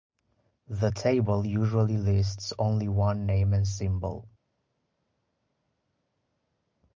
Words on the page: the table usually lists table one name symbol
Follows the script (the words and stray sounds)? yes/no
no